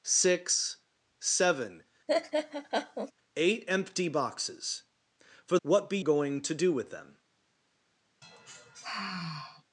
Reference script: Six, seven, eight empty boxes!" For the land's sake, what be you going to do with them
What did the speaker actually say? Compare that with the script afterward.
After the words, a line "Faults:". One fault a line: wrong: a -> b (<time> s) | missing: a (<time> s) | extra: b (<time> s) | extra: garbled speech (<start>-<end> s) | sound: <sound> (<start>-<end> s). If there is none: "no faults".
Six, seven, eight empty boxes!" For what be going to do with them
Faults:
sound: laugh (2.1-3.1 s)
missing: the land's sake (5.6 s)
missing: you (6.0 s)
sound: sigh (8.2-9.6 s)